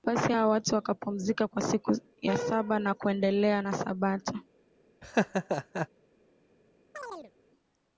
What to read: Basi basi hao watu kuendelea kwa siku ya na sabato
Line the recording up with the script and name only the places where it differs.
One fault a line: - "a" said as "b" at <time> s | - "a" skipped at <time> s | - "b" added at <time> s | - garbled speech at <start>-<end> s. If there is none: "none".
- "basi" skipped at 0.3 s
- "kuendelea" said as "wakapumzika" at 0.7 s
- "saba na kuendelea" added at 2.4 s